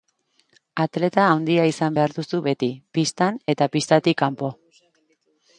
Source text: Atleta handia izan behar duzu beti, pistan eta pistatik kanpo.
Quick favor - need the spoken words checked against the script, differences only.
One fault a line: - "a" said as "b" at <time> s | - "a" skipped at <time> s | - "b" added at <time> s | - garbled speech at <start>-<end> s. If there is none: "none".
none